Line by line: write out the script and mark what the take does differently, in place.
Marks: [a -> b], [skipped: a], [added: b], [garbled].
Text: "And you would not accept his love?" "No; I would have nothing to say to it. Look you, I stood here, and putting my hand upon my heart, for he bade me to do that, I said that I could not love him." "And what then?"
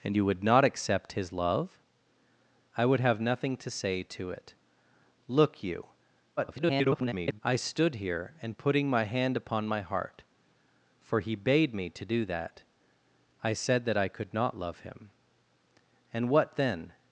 "And you would not accept his love?" [skipped: "No;] I would have nothing to say to it. Look you, [garbled] I stood here, and putting my hand upon my heart, for he bade me to do that, I said that I could not love him." "And what then?"